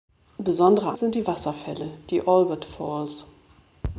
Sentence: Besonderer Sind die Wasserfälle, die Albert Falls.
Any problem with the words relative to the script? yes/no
no